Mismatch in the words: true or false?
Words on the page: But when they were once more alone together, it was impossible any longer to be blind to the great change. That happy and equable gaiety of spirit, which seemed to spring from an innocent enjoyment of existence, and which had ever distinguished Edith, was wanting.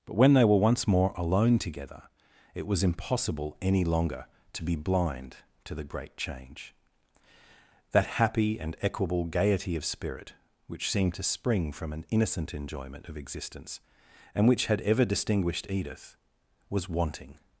false